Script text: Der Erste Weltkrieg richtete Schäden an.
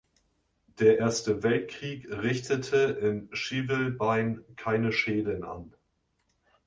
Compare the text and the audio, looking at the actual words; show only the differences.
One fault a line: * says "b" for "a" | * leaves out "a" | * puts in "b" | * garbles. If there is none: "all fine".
* puts in "in Schivelbein keine"